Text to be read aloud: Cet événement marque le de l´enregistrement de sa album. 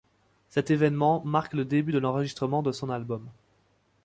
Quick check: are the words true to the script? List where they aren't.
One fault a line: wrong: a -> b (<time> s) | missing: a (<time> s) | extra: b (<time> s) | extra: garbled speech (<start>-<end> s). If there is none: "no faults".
extra: début (1.6 s)
wrong: sa -> son (2.7 s)